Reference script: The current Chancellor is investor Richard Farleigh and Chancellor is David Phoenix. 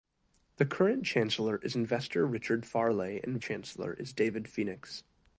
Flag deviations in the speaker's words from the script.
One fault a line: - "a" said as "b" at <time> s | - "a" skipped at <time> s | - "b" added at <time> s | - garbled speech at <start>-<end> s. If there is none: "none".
none